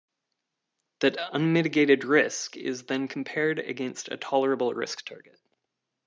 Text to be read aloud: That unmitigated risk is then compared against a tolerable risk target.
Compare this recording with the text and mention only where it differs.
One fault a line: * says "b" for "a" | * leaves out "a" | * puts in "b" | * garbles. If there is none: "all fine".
all fine